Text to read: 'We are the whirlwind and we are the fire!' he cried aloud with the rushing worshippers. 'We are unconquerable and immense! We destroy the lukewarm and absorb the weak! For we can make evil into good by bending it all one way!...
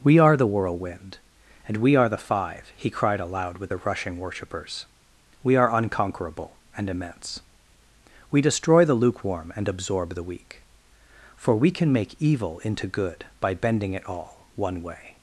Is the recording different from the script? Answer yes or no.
yes